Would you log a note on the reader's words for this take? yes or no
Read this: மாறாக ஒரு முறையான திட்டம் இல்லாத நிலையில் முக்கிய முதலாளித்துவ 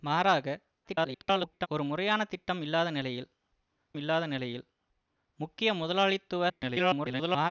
yes